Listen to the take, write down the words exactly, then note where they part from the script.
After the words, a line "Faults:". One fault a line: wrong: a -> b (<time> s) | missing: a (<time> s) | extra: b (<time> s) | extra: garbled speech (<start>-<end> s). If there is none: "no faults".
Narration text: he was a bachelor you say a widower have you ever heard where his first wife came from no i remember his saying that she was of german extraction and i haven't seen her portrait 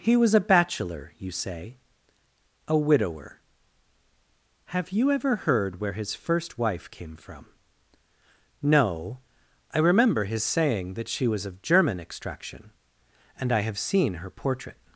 he was a bachelor you say a widower have you ever heard where his first wife came from no i remember his saying that she was of german extraction and i have seen her portrait
Faults:
wrong: haven't -> have (13.6 s)